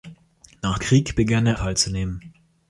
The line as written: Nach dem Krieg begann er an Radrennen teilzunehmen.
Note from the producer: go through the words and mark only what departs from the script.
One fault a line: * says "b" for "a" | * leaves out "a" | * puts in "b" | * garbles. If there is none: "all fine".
* leaves out "dem"
* leaves out "an Radrennen"